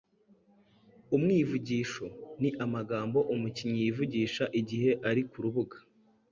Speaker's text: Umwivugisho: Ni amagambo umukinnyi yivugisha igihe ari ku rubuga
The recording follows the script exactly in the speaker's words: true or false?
true